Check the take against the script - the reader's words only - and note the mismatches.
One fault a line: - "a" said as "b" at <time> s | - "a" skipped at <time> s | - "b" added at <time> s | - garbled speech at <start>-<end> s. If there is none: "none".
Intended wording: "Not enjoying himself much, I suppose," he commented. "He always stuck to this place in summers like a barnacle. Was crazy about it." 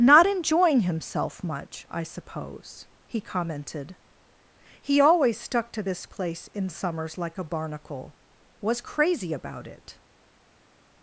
none